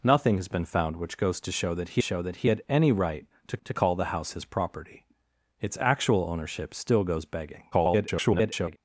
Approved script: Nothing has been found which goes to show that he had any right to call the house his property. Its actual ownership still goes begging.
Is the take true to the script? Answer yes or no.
no